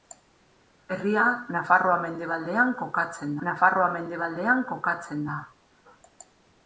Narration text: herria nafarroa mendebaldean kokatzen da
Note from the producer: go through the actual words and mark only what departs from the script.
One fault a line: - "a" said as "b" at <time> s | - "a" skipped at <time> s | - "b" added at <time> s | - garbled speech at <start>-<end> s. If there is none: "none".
- "nafarroa mendebaldean kokatzen" added at 3.5 s